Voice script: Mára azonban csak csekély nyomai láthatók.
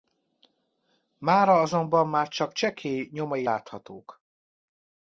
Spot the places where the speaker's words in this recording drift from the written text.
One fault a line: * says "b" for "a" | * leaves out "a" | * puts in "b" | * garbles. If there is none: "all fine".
* puts in "már"